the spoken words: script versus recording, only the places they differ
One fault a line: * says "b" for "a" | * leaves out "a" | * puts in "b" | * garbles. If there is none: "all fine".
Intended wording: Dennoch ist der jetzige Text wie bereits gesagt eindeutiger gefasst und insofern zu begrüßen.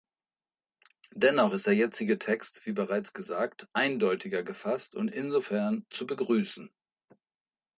all fine